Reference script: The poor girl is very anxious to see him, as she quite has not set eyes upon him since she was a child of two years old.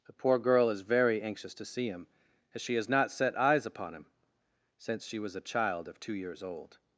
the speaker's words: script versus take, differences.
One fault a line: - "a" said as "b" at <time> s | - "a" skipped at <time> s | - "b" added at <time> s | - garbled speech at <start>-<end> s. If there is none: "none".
- "quite" skipped at 2.7 s